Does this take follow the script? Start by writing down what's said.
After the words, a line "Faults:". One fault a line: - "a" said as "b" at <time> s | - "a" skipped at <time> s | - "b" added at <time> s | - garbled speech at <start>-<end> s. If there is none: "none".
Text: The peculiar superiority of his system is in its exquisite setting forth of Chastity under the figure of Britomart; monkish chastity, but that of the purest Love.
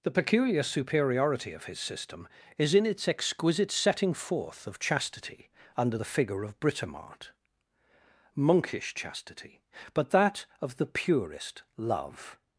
The peculiar superiority of his system is in its exquisite setting forth of Chastity under the figure of Britomart; monkish chastity, but that of the purest Love.
Faults:
none